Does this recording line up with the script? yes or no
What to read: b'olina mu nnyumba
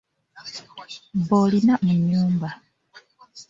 yes